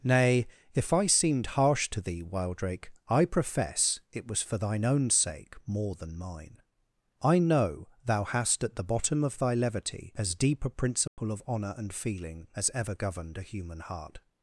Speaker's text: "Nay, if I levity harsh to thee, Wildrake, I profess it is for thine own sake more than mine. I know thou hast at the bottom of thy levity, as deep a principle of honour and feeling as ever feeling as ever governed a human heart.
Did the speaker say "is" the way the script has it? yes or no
no